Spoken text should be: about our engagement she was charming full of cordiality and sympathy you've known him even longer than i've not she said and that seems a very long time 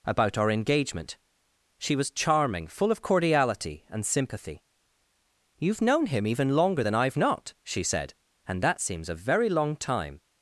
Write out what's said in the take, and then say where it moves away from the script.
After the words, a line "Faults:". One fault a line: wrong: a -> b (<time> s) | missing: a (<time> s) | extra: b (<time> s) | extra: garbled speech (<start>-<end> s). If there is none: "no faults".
about our engagement she was charming full of cordiality and sympathy you've known him even longer than i've not she said and that seems a very long time
Faults:
no faults